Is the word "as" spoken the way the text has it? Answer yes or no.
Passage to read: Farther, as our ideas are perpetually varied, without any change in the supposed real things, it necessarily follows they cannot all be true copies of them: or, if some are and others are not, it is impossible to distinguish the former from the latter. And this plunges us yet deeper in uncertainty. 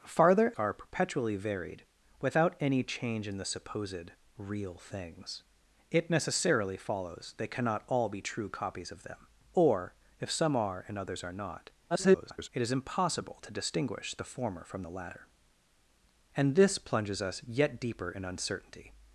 no